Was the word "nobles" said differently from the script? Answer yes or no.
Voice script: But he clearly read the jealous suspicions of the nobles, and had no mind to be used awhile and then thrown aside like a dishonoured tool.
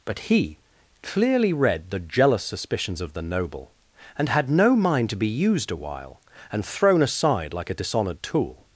yes